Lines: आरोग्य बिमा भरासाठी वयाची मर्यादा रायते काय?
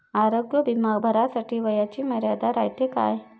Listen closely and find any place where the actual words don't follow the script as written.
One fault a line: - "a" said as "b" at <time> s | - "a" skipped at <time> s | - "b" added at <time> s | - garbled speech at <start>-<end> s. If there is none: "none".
none